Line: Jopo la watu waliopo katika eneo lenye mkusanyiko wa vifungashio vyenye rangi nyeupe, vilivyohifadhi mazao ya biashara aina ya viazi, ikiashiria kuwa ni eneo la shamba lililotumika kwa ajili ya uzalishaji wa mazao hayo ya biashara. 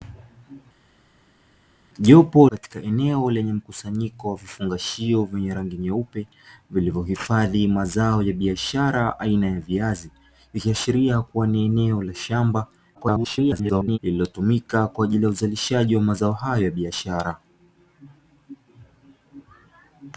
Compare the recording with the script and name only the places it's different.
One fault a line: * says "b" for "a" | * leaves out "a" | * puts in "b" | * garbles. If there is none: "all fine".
* leaves out "la watu waliopo"
* garbles